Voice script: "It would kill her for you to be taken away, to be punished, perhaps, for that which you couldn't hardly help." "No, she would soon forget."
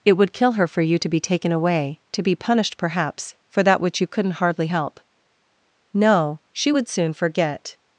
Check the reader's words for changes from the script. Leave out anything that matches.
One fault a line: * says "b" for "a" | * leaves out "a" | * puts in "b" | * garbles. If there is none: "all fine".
all fine